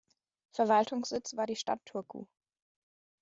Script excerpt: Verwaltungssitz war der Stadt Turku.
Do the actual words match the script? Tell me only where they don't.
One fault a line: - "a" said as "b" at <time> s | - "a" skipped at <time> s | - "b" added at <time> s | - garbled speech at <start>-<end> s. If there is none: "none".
- "der" said as "die" at 1.4 s